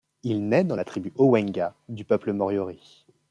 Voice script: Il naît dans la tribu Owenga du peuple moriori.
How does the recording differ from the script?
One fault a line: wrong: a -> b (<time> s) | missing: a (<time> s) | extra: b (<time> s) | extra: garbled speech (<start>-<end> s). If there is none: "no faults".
no faults